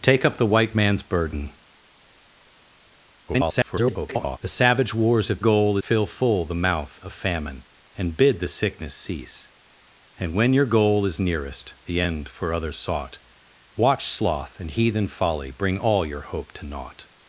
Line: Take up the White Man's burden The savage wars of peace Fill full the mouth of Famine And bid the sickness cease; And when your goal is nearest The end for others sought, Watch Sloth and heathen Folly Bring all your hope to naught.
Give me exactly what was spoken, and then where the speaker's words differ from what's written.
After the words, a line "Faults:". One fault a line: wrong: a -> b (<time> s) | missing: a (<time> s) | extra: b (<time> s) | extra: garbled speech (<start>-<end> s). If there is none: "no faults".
Take up the White Man's burden [garbled] The savage wars of goal Fill full the mouth of Famine And bid the sickness cease; And when your goal is nearest The end for others sought, Watch Sloth and heathen Folly Bring all your hope to naught.
Faults:
extra: garbled speech (3.3-4.4 s)
wrong: peace -> goal (5.4 s)